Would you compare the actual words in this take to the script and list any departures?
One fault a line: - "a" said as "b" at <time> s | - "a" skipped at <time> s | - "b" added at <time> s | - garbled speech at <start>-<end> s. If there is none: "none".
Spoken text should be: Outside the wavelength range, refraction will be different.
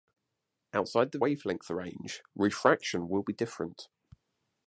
none